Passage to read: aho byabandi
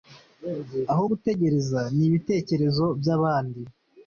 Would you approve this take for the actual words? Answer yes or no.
no